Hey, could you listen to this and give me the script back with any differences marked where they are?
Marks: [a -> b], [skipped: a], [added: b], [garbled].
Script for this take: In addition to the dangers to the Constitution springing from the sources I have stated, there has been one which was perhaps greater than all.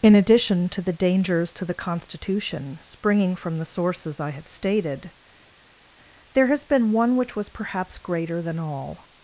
In addition to the dangers to the Constitution springing from the sources I have stated, there has been one which was perhaps greater than all.